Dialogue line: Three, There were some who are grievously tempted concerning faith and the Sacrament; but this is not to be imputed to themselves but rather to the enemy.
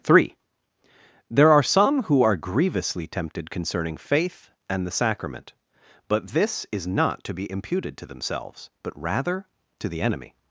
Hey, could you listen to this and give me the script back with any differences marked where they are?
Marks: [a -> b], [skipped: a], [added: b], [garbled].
Three, There [were -> are] some who are grievously tempted concerning faith and the Sacrament; but this is not to be imputed to themselves but rather to the enemy.